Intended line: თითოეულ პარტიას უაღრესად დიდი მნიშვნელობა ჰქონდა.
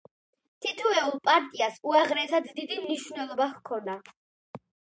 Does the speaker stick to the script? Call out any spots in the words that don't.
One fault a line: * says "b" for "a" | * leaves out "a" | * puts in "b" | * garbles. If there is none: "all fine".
all fine